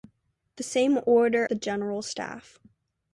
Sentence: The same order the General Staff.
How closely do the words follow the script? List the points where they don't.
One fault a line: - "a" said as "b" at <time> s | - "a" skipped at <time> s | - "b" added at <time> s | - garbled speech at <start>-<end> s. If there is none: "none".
none